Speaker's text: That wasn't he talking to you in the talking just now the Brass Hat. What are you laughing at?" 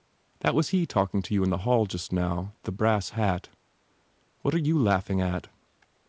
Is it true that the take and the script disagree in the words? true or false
true